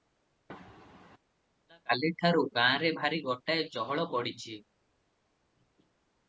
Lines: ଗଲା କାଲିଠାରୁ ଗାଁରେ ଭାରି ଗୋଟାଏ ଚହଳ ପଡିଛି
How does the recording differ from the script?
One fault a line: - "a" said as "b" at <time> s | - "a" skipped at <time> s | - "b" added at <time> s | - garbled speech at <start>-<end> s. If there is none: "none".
none